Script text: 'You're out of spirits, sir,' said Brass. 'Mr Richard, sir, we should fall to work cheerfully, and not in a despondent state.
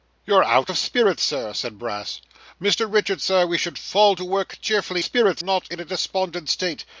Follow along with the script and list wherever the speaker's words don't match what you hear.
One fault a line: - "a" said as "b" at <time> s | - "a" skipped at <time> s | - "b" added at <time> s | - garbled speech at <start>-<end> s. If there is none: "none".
- "and" said as "spirits" at 5.0 s